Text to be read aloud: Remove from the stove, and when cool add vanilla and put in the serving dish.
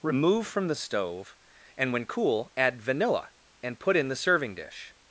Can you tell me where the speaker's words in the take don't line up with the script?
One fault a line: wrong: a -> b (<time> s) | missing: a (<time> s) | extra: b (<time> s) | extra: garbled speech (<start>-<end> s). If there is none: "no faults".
no faults